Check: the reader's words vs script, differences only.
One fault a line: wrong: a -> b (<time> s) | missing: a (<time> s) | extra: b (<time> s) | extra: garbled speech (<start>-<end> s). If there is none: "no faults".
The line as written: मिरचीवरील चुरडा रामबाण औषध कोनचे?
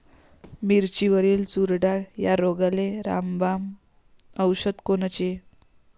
extra: या रोगाले (2.2 s)